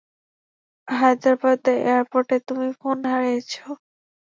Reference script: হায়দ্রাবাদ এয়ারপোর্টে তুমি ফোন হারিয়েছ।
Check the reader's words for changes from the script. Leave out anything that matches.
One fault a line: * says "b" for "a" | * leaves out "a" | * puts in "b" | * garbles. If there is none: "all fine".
all fine